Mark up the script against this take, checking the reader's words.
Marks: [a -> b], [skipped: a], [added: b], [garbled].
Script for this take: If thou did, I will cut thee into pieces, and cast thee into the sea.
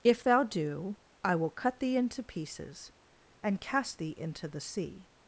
If thou [did, -> do] I will cut thee into pieces, and cast thee into the sea.